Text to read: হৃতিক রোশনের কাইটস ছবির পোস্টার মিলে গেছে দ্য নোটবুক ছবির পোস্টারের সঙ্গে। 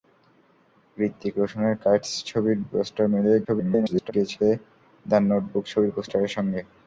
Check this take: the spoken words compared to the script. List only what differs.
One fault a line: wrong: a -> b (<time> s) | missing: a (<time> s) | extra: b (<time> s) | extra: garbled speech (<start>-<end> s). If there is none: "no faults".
extra: garbled speech (3.4-4.1 s)